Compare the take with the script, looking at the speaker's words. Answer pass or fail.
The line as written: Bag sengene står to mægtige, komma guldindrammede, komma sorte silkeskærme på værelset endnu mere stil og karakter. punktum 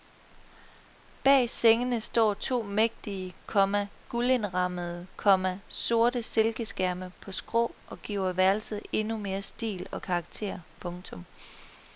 fail